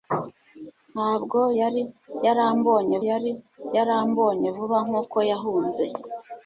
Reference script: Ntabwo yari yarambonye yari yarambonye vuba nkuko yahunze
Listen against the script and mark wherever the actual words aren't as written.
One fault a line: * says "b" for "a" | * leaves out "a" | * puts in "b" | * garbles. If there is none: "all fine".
all fine